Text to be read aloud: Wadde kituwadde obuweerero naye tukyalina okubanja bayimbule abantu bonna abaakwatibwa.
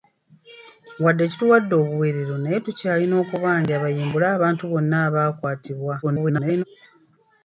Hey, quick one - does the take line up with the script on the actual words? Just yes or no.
no